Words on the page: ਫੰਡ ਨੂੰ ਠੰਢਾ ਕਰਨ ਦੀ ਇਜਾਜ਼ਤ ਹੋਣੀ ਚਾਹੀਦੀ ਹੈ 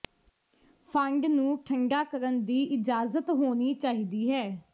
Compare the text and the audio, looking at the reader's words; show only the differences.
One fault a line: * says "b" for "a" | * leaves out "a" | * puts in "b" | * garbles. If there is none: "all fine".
all fine